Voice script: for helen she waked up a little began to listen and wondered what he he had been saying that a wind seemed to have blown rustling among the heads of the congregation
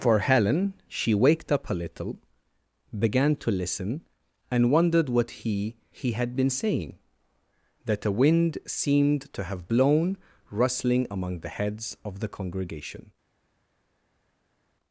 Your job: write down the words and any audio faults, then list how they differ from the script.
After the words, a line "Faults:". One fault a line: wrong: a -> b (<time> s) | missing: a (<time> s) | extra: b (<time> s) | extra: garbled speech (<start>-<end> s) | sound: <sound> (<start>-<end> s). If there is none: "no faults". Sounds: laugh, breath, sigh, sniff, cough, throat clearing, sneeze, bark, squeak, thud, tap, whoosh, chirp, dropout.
for helen she waked up a little began to listen and wondered what he he had been saying that a wind seemed to have blown rustling among the heads of the congregation
Faults:
no faults